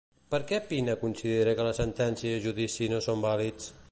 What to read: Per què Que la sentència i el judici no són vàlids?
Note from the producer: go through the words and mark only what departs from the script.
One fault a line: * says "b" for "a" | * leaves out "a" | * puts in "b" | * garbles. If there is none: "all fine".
* puts in "Pina considera"